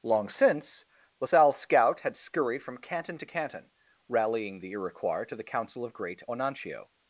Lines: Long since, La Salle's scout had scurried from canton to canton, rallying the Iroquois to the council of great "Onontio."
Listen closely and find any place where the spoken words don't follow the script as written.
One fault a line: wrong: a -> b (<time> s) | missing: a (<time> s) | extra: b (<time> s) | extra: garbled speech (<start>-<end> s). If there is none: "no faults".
no faults